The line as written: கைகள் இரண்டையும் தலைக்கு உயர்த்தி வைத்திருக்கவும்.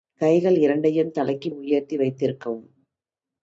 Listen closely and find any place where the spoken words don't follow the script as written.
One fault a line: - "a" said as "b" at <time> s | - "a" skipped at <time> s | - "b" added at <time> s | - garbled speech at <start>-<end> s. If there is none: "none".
none